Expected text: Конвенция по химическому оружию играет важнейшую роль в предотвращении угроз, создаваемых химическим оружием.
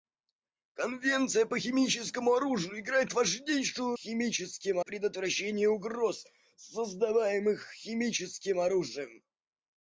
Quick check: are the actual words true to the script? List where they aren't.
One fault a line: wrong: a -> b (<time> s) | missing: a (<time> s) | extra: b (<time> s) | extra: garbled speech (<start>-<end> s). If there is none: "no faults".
wrong: роль -> химическим (3.9 s)